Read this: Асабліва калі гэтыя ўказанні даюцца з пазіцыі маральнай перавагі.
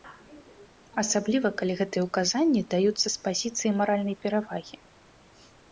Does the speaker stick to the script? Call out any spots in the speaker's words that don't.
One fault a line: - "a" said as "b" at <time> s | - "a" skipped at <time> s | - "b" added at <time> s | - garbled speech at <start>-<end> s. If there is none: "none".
none